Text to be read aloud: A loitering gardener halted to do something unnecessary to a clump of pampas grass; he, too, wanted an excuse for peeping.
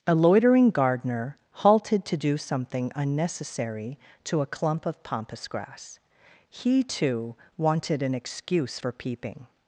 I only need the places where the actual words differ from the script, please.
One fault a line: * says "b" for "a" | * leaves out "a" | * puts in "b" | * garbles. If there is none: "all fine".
all fine